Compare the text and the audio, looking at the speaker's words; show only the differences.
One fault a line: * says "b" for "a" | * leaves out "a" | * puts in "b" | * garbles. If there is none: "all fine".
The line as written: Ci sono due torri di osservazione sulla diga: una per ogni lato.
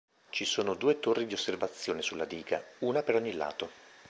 all fine